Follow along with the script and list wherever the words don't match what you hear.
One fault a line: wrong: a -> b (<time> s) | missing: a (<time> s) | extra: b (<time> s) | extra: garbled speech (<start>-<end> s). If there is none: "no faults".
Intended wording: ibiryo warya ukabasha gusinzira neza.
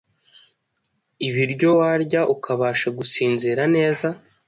no faults